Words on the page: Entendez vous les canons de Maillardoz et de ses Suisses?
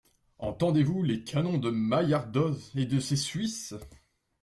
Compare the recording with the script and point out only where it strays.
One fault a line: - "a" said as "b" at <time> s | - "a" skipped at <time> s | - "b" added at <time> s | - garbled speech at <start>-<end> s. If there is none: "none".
none